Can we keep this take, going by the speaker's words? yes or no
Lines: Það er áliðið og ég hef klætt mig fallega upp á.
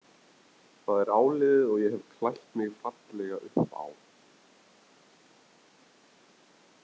yes